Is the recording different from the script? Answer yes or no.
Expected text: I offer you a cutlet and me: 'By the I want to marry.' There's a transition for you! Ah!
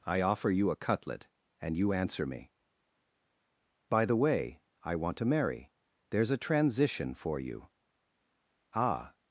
yes